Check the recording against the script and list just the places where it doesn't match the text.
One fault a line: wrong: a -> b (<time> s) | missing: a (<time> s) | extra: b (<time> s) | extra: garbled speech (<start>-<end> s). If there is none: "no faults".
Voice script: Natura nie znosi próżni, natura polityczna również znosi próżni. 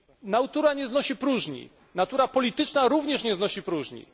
extra: nie (3.2 s)